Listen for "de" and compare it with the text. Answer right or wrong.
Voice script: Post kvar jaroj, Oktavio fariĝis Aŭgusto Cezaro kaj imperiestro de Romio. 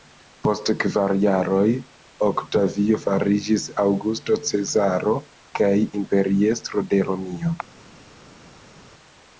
right